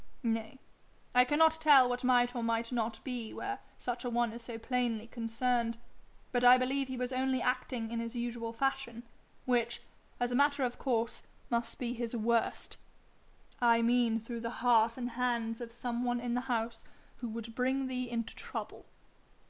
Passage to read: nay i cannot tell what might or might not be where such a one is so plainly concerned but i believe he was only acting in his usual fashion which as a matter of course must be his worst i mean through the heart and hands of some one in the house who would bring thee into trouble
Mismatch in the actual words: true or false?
false